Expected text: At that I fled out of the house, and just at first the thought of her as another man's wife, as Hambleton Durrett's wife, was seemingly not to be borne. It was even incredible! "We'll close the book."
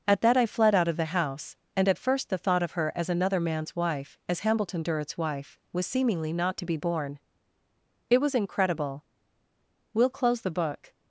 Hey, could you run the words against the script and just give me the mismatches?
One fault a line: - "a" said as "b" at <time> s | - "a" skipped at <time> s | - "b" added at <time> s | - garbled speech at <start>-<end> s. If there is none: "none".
- "just" skipped at 1.9 s
- "even" skipped at 8.3 s